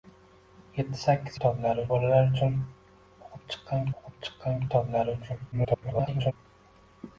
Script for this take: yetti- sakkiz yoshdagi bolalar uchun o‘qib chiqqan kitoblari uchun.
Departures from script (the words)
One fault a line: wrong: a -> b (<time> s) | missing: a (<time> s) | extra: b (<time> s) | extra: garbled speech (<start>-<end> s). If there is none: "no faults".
wrong: yoshdagi -> kitoblari (1.3 s)
extra: o‘qib chiqqan (4.0 s)
extra: garbled speech (5.5-6.3 s)